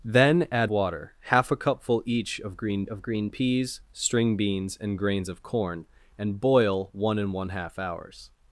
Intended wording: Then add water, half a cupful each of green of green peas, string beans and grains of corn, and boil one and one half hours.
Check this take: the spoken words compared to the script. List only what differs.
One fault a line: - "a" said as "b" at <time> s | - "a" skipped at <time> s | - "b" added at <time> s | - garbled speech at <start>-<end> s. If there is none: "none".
none